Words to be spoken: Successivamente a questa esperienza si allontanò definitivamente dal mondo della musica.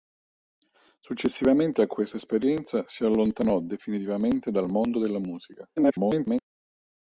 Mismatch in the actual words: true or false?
true